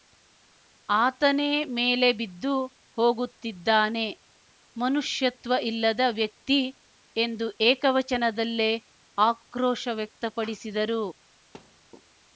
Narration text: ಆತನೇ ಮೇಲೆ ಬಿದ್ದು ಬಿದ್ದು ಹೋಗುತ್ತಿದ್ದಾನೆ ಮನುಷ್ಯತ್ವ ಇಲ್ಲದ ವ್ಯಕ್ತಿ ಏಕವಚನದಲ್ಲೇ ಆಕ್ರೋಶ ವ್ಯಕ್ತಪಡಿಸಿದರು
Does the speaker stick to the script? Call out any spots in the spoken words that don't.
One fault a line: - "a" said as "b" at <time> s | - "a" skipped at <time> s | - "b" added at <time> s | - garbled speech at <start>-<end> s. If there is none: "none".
- "ಬಿದ್ದು" skipped at 2.5 s
- "ಎಂದು" added at 7.2 s